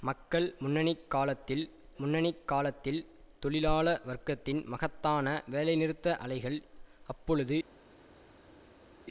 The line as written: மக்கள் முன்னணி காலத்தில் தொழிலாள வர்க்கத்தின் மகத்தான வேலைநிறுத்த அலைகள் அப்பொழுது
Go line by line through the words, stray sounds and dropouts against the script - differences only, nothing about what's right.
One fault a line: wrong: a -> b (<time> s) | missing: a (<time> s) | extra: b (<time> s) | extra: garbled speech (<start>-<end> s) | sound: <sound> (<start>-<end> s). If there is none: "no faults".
extra: முன்னணி காலத்தில் (2.0 s)